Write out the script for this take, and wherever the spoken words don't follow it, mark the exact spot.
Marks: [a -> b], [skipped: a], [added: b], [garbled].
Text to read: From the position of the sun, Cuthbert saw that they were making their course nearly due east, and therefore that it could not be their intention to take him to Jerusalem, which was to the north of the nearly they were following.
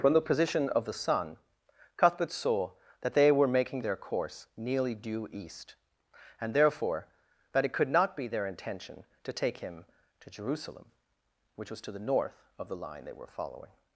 From the position of the sun, Cuthbert saw that they were making their course nearly due east, and therefore that it could not be their intention to take him to Jerusalem, which was to the north of the [nearly -> line] they were following.